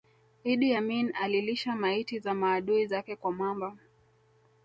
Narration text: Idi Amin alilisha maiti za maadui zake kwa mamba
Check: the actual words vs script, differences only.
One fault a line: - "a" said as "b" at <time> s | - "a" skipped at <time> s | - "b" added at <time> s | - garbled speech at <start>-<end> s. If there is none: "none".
none